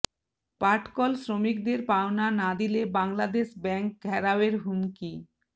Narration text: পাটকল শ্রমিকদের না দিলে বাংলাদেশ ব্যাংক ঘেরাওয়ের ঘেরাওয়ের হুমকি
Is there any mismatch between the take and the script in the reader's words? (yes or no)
yes